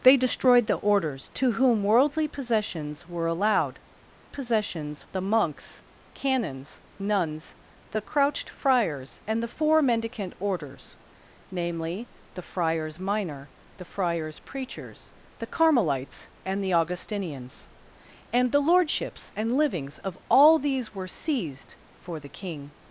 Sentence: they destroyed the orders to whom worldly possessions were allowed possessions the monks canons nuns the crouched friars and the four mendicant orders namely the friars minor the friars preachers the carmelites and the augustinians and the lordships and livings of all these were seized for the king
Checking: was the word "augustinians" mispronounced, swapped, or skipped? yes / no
no